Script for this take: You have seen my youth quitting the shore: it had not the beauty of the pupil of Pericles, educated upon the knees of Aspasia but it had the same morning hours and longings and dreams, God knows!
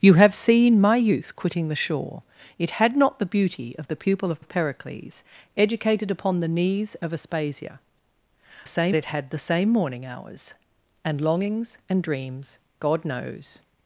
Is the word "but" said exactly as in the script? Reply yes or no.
no